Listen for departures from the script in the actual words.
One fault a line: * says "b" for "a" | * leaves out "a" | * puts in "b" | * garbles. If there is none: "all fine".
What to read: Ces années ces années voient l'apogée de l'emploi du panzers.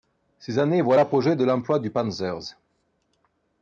* leaves out "ces années"